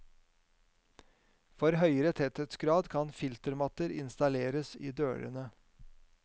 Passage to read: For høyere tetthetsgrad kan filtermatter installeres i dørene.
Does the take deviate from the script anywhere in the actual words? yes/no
no